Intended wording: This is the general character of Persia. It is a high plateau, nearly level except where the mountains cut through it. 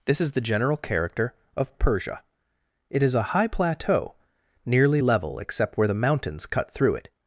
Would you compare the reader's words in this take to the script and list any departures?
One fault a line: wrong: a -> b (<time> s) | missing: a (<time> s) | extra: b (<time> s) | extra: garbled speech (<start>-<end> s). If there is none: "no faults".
no faults